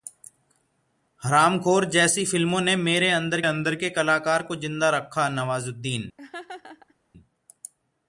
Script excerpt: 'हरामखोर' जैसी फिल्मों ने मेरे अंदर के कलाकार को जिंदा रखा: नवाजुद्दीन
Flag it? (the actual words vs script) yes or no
yes